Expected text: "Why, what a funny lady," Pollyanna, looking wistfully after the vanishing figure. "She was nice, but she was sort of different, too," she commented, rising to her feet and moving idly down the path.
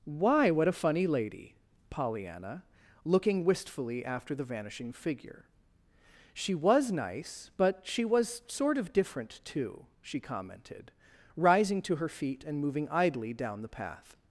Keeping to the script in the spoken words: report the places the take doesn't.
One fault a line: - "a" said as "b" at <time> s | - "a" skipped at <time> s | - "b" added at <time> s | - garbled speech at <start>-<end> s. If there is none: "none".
none